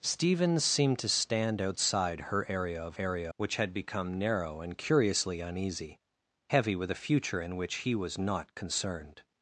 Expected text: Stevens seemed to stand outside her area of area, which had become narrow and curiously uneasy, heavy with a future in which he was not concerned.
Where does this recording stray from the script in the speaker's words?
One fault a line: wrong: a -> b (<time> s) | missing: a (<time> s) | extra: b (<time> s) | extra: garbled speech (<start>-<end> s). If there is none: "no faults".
no faults